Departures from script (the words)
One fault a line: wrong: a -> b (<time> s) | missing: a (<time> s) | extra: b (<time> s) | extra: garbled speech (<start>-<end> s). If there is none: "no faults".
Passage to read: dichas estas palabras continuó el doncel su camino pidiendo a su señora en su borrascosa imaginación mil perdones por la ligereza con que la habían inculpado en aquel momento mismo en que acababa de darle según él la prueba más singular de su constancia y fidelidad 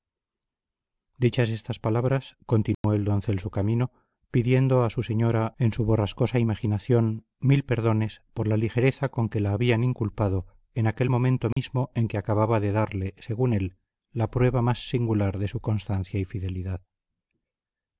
no faults